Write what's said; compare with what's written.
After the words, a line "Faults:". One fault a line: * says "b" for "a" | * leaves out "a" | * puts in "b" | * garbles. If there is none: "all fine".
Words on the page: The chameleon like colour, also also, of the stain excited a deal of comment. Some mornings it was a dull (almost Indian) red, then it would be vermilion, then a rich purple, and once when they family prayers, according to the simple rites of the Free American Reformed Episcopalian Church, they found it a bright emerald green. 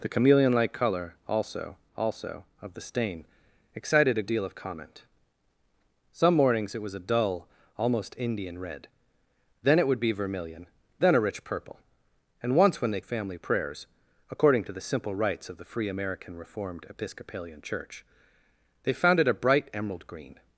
The chameleon like colour, also also, of the stain excited a deal of comment. Some mornings it was a dull (almost Indian) red, then it would be vermilion, then a rich purple, and once when they family prayers, according to the simple rites of the Free American Reformed Episcopalian Church, they found it a bright emerald green.
Faults:
all fine